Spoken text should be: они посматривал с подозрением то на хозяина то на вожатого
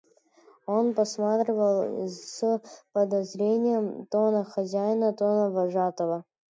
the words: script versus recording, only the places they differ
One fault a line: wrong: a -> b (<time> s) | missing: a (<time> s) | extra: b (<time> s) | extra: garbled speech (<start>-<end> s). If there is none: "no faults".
wrong: они -> он (0.7 s)